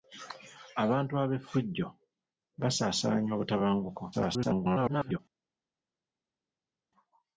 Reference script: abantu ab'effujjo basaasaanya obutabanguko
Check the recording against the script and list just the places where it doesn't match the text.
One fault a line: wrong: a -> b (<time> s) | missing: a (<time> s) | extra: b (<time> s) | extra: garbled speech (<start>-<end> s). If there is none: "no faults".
extra: garbled speech (4.1-5.2 s)